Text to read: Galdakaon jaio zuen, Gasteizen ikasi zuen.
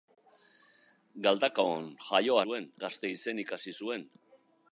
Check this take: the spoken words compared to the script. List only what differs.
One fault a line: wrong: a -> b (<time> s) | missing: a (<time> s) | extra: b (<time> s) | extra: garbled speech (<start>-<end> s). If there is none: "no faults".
no faults